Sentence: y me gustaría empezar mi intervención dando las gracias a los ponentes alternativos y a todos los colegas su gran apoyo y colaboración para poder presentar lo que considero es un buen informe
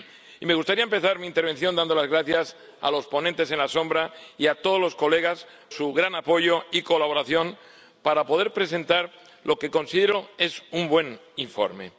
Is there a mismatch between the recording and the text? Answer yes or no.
no